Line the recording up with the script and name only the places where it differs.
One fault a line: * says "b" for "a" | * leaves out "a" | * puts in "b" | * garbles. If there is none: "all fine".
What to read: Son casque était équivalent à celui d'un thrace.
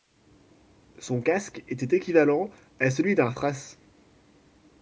all fine